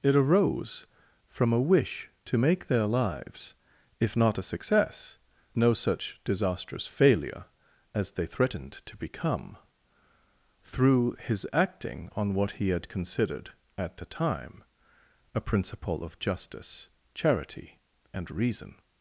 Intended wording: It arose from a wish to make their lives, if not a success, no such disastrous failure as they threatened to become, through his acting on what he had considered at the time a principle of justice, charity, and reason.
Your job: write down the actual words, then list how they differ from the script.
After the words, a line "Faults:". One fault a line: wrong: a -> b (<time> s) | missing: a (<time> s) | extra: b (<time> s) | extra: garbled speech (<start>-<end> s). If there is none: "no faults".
It arose from a wish to make their lives, if not a success, no such disastrous failure as they threatened to become, through his acting on what he had considered at the time a principle of justice, charity, and reason.
Faults:
no faults